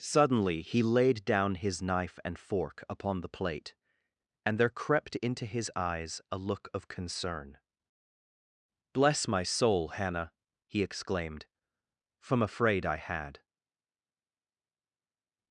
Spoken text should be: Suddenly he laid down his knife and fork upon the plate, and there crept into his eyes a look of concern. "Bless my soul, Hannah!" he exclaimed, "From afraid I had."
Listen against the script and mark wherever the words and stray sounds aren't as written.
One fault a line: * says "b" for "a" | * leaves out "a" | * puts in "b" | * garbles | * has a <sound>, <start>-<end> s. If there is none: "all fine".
all fine